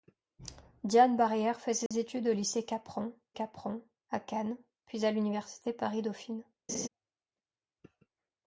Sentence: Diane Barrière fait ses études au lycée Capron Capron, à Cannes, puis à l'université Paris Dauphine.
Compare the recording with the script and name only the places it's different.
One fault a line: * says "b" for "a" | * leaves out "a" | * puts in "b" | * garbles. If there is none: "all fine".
all fine